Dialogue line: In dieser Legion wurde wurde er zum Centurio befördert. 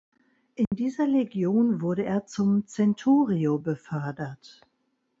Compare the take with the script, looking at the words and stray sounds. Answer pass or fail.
fail